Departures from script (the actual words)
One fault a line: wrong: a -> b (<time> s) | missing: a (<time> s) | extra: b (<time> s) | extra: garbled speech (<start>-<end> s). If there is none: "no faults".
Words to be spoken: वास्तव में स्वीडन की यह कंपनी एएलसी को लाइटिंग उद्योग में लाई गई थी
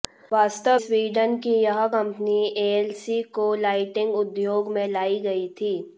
missing: में (0.8 s)